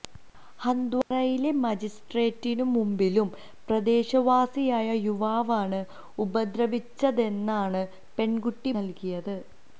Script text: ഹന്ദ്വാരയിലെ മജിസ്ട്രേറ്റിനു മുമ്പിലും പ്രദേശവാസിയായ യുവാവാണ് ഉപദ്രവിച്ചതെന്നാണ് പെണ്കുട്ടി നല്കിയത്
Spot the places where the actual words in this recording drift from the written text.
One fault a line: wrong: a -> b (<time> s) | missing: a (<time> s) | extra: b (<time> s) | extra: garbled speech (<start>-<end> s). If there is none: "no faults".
no faults